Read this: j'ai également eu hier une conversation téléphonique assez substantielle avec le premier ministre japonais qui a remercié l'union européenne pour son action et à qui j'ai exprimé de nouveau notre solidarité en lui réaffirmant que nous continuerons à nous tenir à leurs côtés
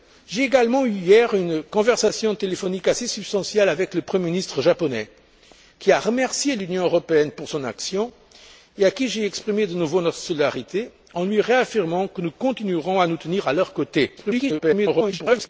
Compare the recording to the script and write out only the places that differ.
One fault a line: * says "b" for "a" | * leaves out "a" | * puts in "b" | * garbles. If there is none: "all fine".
* garbles